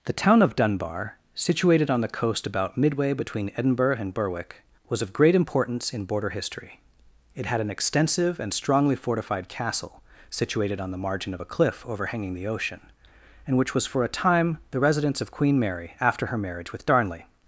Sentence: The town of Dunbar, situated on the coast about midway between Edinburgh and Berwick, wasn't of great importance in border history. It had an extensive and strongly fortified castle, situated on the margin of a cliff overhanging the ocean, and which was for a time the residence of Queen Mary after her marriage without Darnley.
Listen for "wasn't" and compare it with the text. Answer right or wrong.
wrong